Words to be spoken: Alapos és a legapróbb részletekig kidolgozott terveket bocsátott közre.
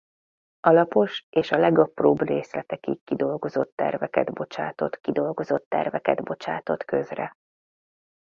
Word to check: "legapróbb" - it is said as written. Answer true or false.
true